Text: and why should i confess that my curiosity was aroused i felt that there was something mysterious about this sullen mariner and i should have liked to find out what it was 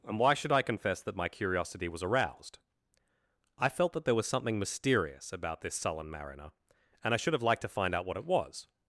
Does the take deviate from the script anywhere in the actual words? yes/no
no